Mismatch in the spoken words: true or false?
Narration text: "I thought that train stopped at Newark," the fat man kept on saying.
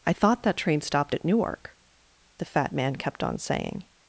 false